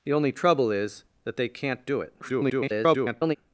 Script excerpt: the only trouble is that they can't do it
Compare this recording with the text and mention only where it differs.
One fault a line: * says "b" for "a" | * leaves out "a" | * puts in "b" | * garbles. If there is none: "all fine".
* garbles